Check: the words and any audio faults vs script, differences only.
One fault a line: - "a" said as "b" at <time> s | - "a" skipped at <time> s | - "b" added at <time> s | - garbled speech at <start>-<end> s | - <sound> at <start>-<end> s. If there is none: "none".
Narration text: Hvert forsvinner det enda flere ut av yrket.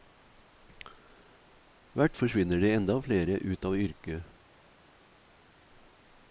none